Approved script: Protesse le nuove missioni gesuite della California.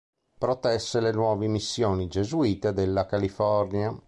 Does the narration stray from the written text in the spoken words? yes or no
no